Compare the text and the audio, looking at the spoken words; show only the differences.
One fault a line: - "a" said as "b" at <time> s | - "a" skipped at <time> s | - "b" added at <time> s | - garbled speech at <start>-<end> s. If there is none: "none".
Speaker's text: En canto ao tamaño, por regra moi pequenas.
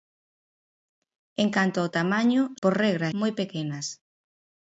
none